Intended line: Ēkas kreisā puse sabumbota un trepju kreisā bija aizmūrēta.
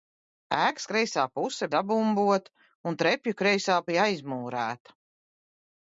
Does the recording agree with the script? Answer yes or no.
yes